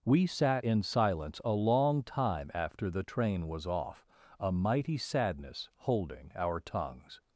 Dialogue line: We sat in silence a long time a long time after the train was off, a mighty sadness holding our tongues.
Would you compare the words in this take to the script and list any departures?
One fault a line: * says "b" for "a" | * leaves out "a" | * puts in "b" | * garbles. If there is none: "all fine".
* leaves out "a long time"